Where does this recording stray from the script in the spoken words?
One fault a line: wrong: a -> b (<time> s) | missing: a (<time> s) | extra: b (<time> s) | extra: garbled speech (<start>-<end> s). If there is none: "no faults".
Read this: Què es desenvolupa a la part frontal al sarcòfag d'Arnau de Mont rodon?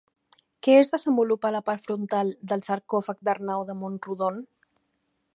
wrong: al -> del (2.5 s)